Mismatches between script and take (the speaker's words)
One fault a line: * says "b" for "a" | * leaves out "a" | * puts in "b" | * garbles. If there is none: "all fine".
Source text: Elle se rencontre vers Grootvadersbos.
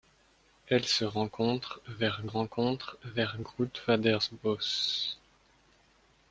* puts in "rencontre vers"